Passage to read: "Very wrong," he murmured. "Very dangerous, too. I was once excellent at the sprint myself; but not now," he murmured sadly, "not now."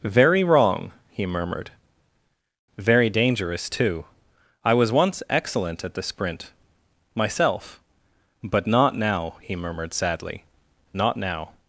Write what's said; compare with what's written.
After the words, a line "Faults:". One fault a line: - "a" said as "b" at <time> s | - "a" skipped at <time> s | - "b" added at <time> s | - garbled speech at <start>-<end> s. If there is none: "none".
"Very wrong," he murmured. "Very dangerous, too. I was once excellent at the sprint myself; but not now," he murmured sadly, "not now."
Faults:
none